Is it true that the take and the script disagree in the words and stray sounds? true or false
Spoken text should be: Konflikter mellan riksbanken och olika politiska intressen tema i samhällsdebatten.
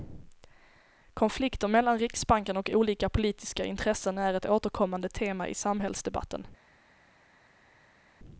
true